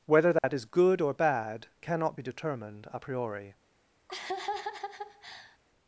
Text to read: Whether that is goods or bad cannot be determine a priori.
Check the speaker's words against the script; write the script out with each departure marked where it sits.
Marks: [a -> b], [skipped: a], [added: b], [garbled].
Whether that is [goods -> good] or bad cannot be [determine -> determined] a priori.